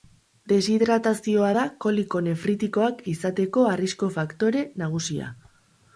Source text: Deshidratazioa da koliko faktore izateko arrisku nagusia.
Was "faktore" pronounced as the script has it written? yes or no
no